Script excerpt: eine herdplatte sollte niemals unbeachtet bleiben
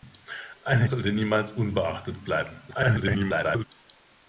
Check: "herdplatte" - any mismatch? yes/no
yes